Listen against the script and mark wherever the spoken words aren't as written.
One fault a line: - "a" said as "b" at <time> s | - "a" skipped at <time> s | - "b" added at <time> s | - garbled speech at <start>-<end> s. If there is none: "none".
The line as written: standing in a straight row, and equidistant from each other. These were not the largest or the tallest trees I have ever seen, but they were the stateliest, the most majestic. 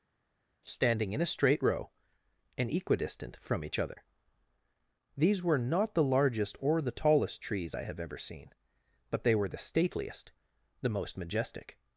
none